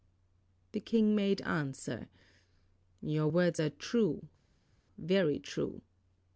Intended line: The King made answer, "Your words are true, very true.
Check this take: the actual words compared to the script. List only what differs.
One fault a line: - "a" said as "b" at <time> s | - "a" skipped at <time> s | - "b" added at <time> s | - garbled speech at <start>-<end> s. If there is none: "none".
none